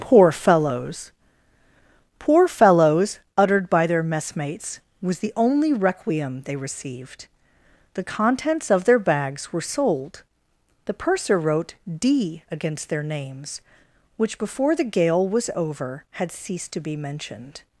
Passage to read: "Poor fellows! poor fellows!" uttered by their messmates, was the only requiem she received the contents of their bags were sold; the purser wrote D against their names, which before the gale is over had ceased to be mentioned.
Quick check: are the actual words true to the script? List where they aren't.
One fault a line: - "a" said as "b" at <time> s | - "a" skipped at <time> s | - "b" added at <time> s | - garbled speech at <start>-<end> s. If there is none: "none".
- "she" said as "they" at 6.4 s
- "is" said as "was" at 15.3 s